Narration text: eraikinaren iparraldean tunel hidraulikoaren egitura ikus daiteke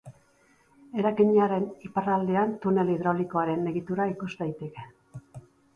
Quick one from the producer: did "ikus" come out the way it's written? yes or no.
yes